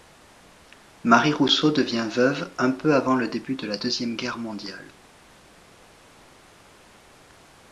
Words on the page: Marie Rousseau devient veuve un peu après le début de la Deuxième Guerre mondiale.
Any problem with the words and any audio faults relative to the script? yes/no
yes